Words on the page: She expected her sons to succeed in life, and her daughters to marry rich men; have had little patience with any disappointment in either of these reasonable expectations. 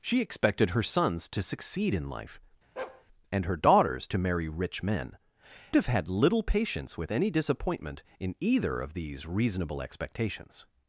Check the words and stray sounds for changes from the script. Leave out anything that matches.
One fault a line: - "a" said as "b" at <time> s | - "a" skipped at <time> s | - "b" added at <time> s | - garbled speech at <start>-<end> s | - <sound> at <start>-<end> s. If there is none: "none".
- bark at 2.8-3.0 s